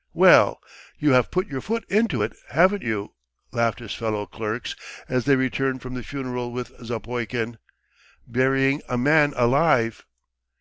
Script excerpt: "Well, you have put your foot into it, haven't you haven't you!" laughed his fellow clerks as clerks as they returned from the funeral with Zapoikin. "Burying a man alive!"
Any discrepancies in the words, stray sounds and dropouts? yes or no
yes